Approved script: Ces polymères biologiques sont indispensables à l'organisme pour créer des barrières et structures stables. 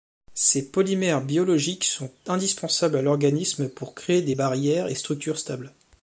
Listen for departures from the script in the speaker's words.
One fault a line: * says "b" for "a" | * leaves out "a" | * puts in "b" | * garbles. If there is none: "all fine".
all fine